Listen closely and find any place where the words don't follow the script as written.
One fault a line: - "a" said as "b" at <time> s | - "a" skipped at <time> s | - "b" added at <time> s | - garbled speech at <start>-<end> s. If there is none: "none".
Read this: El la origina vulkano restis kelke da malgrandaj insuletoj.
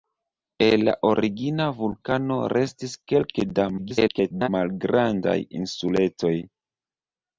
- garbled speech at 3.8-4.5 s